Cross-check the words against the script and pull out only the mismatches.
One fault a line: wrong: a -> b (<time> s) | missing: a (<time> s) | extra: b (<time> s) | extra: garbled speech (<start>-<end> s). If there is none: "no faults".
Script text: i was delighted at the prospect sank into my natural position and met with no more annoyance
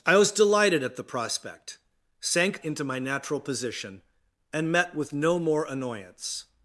no faults